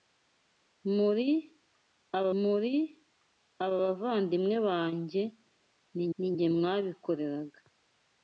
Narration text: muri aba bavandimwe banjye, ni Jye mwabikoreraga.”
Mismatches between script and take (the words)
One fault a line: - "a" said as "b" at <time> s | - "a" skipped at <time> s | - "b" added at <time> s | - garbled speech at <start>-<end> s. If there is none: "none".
- "muri aba" added at 2.4 s
- "ni" added at 6.2 s